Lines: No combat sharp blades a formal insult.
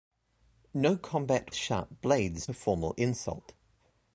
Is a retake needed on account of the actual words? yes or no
no